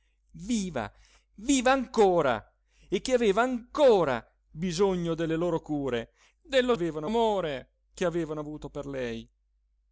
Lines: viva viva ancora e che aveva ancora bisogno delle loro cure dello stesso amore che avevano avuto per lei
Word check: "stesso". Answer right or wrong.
wrong